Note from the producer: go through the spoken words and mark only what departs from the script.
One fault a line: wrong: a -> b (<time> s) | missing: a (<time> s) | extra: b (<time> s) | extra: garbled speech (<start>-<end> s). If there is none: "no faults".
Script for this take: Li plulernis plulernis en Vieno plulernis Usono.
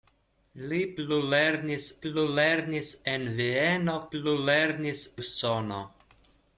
no faults